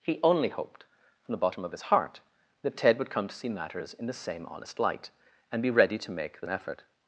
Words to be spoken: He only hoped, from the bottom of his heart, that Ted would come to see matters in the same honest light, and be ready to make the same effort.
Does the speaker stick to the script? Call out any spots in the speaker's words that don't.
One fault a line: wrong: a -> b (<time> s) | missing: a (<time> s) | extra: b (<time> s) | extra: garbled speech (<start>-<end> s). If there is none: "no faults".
missing: same (6.5 s)